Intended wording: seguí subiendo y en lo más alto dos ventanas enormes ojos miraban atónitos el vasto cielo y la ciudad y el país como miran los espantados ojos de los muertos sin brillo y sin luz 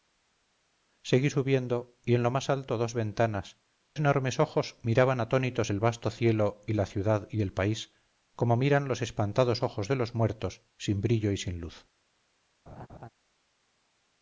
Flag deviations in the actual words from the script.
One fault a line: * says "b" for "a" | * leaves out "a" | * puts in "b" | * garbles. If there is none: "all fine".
all fine